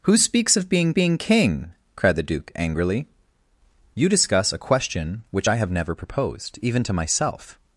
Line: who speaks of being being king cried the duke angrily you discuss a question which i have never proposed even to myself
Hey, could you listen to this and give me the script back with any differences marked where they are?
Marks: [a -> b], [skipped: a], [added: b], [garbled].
who speaks of being being king cried the duke angrily you discuss a question which i have never proposed even to myself